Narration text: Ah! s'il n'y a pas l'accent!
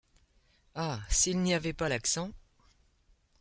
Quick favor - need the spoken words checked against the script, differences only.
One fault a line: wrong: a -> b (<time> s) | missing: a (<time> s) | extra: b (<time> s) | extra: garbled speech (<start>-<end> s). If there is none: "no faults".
wrong: a -> avait (1.5 s)